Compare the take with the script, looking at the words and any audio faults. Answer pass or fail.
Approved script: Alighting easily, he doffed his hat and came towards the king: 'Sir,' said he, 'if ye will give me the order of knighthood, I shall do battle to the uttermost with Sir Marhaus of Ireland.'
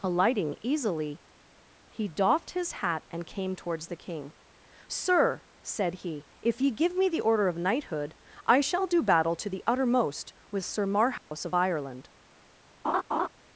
fail